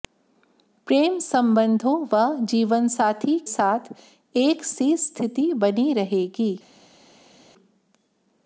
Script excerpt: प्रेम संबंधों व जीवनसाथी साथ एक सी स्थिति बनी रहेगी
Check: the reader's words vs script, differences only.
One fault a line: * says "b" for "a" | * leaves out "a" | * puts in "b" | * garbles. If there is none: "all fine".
all fine